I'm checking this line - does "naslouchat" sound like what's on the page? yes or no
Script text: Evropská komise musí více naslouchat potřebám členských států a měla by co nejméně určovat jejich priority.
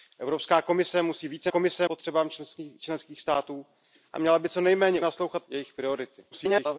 no